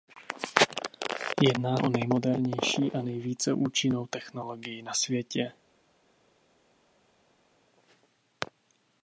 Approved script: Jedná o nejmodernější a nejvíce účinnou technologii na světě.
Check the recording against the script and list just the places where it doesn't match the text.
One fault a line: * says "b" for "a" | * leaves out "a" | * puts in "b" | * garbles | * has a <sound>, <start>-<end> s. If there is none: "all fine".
all fine